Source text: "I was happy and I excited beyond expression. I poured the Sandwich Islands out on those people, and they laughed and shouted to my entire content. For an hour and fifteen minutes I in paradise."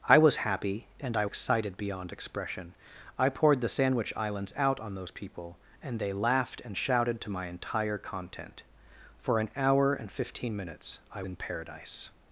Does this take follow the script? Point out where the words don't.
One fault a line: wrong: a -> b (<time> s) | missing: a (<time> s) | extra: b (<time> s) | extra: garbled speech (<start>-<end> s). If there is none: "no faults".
no faults